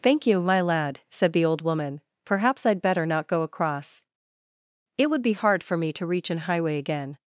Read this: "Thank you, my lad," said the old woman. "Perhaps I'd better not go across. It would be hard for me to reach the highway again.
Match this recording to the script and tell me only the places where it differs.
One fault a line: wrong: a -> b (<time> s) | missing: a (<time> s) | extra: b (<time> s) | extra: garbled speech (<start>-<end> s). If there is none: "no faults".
wrong: the -> an (6.3 s)